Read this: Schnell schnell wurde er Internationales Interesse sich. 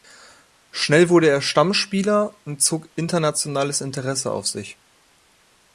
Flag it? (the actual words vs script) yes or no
yes